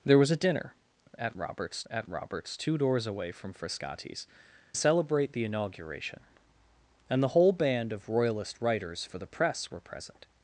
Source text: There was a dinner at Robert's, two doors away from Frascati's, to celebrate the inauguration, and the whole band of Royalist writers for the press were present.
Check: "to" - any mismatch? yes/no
yes